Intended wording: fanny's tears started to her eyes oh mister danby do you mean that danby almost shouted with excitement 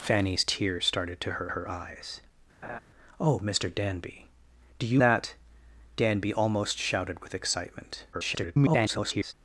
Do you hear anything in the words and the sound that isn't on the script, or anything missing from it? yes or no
yes